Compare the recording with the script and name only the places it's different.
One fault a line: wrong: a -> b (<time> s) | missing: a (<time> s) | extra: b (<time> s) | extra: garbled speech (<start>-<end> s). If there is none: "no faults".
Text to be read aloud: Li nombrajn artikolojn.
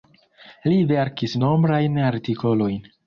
extra: verkis (0.9 s)